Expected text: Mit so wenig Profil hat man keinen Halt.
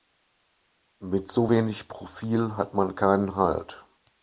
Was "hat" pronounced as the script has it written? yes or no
yes